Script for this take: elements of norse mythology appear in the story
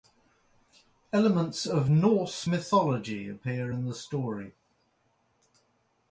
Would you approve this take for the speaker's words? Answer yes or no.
yes